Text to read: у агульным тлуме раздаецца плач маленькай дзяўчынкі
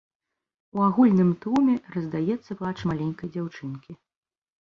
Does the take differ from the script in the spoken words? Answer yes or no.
no